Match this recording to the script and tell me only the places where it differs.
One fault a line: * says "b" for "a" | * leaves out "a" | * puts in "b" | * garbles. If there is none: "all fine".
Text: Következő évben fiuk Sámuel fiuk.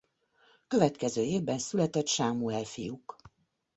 * says "született" for "fiuk"